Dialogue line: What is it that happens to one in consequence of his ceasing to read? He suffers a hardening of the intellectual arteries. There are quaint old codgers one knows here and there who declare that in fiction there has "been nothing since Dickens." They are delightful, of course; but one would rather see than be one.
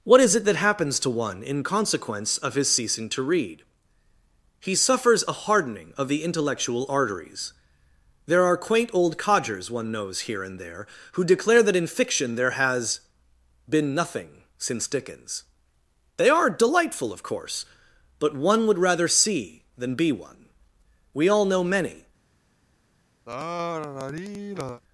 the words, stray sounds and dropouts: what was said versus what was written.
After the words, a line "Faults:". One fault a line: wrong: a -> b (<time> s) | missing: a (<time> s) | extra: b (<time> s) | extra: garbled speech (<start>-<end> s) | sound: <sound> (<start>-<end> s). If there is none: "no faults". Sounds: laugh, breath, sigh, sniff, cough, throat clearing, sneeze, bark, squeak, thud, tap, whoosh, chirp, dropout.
What is it that happens to one in consequence of his ceasing to read? He suffers a hardening of the intellectual arteries. There are quaint old codgers one knows here and there who declare that in fiction there has "been nothing since Dickens." They are delightful, of course; but one would rather see than be one. We all know many
Faults:
extra: We all know many (21.1 s)
sound: sigh (23.3-24.8 s)